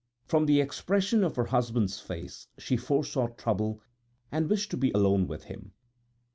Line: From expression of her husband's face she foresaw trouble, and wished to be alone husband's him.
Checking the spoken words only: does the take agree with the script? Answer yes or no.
no